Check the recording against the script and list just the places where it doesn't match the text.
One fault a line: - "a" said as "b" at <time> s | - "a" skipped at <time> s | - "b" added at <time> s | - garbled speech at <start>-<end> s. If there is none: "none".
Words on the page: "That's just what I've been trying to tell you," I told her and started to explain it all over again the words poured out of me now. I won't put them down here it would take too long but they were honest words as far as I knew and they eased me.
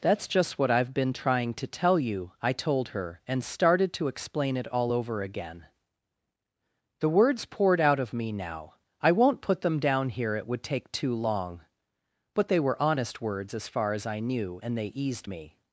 none